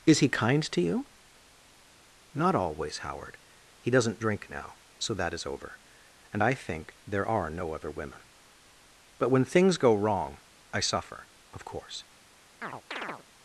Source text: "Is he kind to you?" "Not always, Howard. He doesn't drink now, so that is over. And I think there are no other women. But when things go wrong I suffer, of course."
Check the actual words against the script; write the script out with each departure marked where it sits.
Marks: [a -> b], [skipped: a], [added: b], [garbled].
"Is he kind to you?" "Not always, Howard. He doesn't drink now, so that is over. And I think there are no other women. But when things go wrong I suffer, of course."